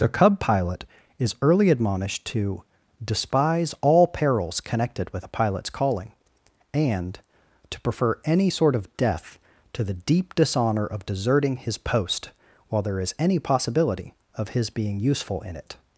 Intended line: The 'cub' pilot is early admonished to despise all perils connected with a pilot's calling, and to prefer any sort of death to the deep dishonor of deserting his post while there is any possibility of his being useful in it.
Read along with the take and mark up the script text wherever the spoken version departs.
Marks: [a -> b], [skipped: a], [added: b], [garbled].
The 'cub' pilot is early admonished to despise all perils connected with a pilot's calling, and to prefer any sort of death to the deep dishonor of deserting his post while there is any possibility of his being useful in it.